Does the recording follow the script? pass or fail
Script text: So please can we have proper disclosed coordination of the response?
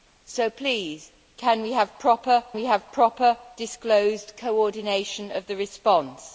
fail